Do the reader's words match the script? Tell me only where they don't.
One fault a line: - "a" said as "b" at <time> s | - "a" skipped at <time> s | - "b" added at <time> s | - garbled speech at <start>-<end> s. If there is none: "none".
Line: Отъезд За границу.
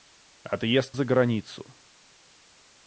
none